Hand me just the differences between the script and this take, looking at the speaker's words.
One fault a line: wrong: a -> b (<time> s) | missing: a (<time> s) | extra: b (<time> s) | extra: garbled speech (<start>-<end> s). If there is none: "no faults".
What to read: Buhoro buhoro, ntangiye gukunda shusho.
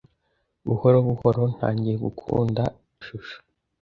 no faults